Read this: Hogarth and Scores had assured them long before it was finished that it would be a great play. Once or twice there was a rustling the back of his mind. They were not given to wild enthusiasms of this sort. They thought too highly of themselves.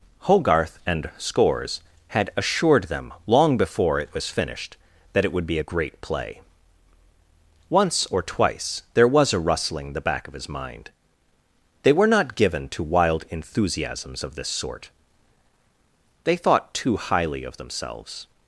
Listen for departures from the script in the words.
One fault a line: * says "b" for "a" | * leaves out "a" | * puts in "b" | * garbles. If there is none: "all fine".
all fine